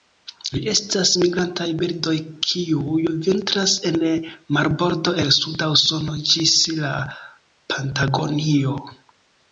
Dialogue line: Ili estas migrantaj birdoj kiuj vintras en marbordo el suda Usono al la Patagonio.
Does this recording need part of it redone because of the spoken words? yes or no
yes